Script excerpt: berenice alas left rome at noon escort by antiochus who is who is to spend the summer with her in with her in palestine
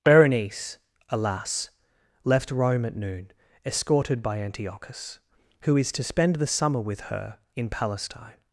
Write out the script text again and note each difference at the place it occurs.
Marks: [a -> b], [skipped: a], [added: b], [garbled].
berenice alas left rome at noon [escort -> escorted] by antiochus who is [skipped: who is] to spend the summer with her in [skipped: with her in] palestine